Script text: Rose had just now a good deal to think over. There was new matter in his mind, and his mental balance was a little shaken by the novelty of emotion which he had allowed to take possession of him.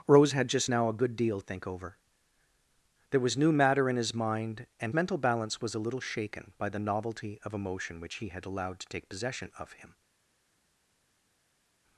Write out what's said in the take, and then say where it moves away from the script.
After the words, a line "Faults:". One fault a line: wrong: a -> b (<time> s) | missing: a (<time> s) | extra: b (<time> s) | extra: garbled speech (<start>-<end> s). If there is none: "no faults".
Rose had just now a good deal think over. There was new matter in his mind, and mental balance was a little shaken by the novelty of emotion which he had allowed to take possession of him.
Faults:
missing: to (1.4 s)
missing: his (4.9 s)